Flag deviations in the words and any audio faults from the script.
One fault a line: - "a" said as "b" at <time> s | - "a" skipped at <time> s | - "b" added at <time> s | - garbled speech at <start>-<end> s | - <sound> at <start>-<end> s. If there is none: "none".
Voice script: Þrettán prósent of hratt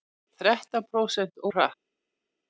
none